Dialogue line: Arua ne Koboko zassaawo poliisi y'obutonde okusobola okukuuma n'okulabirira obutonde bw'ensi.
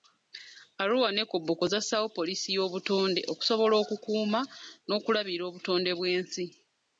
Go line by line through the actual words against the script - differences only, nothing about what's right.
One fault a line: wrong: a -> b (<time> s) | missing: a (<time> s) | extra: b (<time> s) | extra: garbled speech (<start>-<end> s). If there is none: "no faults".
no faults